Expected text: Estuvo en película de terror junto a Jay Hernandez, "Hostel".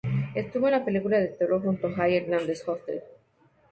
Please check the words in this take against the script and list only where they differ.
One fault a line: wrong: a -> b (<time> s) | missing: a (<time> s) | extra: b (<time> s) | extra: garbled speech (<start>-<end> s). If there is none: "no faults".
extra: la (0.7 s)